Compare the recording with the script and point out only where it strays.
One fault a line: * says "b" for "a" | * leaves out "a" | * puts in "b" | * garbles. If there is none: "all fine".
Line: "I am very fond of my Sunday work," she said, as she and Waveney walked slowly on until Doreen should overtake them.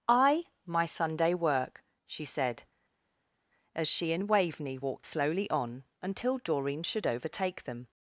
* leaves out "am very fond of"